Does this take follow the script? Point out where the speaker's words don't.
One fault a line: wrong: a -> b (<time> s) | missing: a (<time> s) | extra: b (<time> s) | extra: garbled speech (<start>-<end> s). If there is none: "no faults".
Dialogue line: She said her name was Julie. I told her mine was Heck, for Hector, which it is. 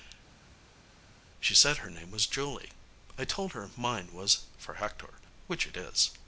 missing: Heck (4.4 s)